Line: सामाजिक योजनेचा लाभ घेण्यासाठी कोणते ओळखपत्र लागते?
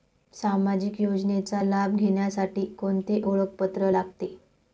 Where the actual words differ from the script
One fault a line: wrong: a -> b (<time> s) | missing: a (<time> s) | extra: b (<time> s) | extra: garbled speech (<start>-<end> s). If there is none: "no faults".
no faults